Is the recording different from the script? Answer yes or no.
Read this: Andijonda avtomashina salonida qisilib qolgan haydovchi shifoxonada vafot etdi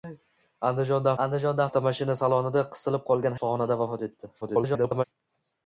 yes